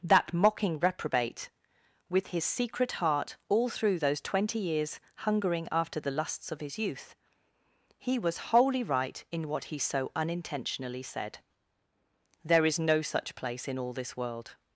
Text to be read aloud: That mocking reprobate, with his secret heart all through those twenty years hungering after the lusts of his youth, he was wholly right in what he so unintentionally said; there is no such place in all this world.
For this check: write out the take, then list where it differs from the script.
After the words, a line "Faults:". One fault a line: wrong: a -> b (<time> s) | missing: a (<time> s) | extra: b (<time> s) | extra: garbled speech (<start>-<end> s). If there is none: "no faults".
That mocking reprobate, with his secret heart all through those twenty years hungering after the lusts of his youth, he was wholly right in what he so unintentionally said; there is no such place in all this world.
Faults:
no faults